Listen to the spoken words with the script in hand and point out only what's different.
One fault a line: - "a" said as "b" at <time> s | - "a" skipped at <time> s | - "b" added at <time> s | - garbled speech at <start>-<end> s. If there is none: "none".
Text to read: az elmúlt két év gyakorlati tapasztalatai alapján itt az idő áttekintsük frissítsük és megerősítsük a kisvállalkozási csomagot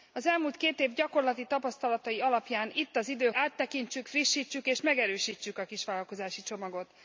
none